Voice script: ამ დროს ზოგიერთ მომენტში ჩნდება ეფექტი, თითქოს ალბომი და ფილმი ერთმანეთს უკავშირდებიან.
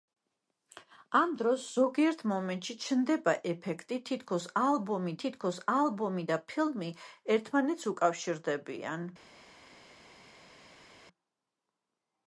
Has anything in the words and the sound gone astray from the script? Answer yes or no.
yes